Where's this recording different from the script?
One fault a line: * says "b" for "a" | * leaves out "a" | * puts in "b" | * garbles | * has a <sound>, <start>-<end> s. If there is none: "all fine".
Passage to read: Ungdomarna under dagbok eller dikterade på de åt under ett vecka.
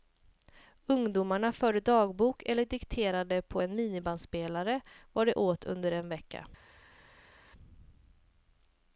* says "förde" for "under"
* puts in "en minibandspelare vad"
* says "en" for "ett"